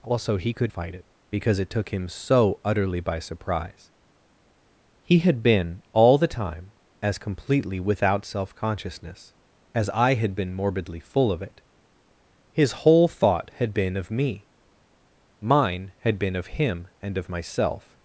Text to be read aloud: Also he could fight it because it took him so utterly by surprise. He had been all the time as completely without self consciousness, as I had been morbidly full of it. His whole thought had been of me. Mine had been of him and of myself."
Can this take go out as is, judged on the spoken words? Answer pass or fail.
pass